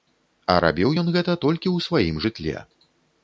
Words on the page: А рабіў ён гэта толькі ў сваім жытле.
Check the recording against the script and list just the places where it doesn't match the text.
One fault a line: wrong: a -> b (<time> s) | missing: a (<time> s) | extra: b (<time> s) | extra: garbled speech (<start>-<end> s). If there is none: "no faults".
no faults